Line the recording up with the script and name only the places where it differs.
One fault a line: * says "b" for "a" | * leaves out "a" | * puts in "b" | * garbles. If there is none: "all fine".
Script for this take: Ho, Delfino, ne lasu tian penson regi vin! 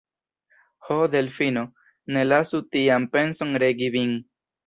all fine